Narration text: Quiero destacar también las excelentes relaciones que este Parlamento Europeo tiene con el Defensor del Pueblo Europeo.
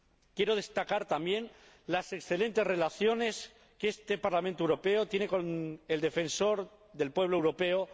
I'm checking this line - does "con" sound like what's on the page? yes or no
yes